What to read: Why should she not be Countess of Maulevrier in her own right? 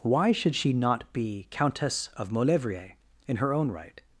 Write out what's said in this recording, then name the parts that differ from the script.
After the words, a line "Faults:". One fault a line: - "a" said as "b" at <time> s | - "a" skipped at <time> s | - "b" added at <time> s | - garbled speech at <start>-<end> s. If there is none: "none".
Why should she not be Countess of Maulevrier in her own right?
Faults:
none